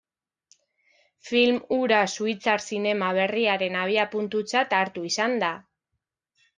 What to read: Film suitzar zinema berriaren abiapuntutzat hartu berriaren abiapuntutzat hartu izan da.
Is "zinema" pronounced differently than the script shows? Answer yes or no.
no